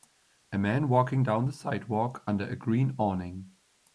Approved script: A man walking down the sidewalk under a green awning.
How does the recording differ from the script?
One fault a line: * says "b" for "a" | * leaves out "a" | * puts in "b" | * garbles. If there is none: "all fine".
all fine